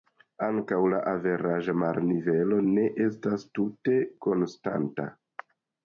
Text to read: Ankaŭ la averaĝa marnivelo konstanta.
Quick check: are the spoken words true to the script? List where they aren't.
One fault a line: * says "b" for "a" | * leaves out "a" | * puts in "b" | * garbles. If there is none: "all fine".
* puts in "ne estas tute"